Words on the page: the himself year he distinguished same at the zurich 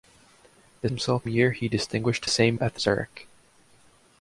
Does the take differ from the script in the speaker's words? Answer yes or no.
no